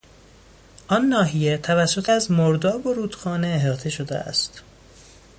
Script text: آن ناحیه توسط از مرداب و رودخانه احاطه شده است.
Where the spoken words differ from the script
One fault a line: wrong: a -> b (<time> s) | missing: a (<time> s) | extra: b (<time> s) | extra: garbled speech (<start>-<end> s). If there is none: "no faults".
no faults